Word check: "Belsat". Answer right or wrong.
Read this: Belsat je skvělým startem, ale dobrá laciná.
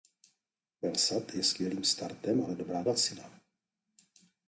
right